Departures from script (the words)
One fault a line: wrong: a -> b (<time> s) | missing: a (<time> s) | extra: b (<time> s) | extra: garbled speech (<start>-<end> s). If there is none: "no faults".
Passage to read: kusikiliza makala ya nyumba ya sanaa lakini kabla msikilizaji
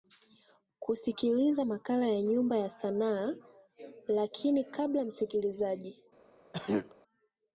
no faults